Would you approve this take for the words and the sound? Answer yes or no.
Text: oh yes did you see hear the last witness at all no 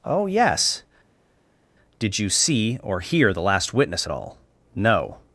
no